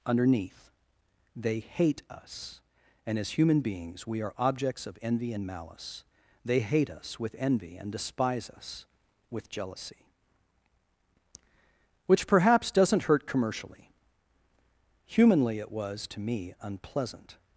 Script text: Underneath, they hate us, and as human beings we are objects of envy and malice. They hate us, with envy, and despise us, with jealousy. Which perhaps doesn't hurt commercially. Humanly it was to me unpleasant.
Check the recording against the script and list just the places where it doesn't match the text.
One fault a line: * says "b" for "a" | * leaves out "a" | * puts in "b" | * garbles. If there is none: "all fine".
all fine